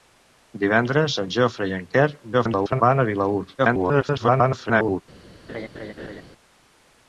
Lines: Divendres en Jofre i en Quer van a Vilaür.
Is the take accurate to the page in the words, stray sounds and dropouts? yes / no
no